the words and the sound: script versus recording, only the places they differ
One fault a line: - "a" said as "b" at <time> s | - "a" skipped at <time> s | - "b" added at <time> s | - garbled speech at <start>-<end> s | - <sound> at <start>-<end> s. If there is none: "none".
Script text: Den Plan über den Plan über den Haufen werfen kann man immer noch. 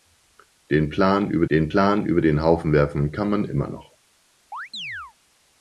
- chirp at 4.5-5.1 s